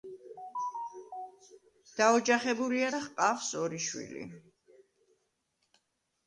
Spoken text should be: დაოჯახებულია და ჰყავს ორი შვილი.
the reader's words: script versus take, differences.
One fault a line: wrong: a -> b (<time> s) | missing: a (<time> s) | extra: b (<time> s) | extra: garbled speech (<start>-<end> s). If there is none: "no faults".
no faults